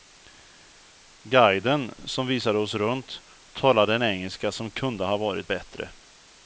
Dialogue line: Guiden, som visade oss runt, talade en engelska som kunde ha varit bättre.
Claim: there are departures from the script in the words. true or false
false